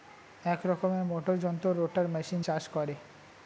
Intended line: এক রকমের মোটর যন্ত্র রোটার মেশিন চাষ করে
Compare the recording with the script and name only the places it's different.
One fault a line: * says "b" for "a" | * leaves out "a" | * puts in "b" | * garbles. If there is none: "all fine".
all fine